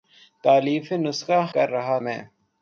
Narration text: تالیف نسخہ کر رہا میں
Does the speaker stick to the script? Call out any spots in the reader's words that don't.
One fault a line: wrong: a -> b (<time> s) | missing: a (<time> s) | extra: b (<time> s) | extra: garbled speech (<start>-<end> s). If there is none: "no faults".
no faults